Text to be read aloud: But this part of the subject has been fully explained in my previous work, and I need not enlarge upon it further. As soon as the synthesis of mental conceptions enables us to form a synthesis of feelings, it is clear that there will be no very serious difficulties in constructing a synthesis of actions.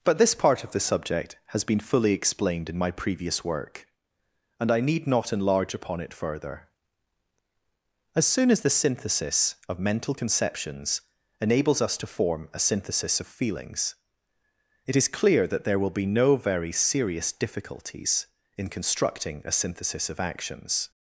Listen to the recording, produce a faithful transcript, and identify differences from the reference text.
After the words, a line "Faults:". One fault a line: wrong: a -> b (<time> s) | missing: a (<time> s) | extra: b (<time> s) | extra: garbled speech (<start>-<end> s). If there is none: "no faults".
But this part of the subject has been fully explained in my previous work, and I need not enlarge upon it further. As soon as the synthesis of mental conceptions enables us to form a synthesis of feelings, it is clear that there will be no very serious difficulties in constructing a synthesis of actions.
Faults:
no faults